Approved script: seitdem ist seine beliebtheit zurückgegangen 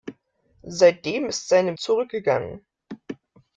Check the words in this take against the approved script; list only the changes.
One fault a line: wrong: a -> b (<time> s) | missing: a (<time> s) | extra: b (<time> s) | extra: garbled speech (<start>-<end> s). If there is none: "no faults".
missing: beliebtheit (1.7 s)